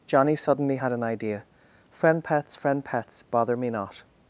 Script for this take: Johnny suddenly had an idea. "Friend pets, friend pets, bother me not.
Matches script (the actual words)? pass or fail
pass